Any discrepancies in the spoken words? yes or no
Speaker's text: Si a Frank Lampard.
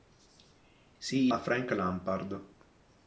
no